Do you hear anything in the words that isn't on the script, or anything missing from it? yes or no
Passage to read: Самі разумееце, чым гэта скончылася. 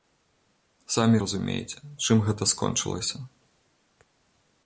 no